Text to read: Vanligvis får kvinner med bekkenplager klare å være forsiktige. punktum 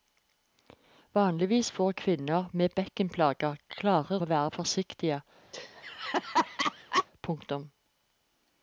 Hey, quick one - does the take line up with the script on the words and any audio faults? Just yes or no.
no